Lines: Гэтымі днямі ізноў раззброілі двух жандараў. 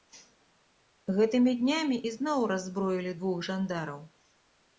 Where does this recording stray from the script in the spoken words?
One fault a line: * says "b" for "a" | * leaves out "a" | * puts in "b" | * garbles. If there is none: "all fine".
all fine